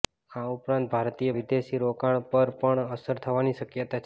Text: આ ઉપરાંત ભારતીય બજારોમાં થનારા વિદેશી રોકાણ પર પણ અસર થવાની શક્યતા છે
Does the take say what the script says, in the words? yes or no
no